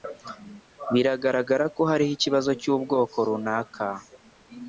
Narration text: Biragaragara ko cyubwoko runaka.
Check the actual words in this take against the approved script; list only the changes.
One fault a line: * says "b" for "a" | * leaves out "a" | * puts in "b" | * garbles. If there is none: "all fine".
* puts in "hariho ikibazo"